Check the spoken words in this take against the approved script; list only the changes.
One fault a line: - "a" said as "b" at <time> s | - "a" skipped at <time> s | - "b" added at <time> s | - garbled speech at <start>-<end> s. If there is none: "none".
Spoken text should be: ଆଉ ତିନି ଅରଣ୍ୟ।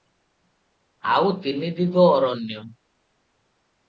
- "ଦିଗ" added at 1.8 s